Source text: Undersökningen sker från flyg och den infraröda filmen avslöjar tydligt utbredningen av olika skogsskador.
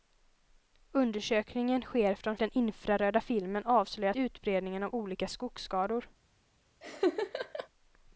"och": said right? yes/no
no